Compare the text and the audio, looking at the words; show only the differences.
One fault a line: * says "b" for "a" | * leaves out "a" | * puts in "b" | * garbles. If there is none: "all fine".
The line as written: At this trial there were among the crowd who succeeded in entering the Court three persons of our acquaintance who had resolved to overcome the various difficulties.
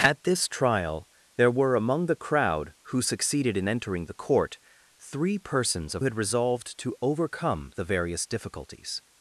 * leaves out "our acquaintance who"